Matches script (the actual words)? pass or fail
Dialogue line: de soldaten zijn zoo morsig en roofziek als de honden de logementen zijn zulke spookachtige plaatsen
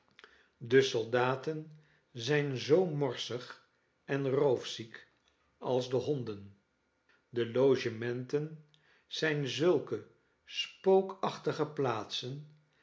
pass